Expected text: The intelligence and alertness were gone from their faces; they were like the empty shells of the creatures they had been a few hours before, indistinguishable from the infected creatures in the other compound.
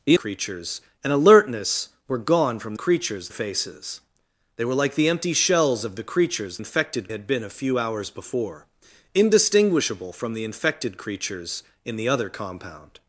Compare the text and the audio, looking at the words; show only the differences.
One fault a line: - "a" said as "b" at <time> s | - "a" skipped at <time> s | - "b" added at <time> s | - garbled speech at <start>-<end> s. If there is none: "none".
- "intelligence" said as "creatures" at 0.1 s
- "their" said as "creatures" at 2.7 s
- "they" said as "infected" at 6.6 s